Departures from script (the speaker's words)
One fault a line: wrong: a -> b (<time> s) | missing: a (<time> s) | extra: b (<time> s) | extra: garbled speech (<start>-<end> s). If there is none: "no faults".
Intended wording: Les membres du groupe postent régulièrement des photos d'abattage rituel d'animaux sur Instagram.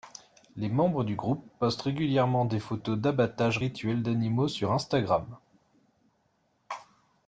no faults